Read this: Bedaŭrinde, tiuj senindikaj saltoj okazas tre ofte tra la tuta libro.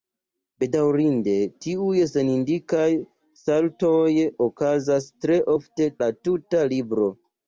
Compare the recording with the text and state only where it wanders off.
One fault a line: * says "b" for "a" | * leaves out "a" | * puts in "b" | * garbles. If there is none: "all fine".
* leaves out "tra"